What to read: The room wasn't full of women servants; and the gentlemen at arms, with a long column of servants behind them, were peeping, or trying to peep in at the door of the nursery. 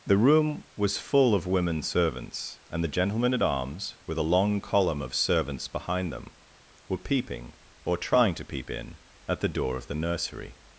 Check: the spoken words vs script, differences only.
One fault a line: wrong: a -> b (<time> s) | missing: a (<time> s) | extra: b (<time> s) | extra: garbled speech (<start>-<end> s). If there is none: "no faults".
wrong: wasn't -> was (0.8 s)